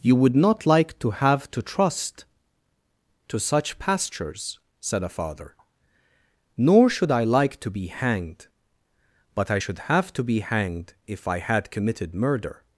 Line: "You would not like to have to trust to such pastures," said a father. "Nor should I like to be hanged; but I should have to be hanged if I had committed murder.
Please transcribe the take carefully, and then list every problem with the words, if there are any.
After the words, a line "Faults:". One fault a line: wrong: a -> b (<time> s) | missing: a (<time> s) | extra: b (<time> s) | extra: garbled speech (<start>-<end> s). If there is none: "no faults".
"You would not like to have to trust to such pastures," said a father. "Nor should I like to be hanged; but I should have to be hanged if I had committed murder.
Faults:
no faults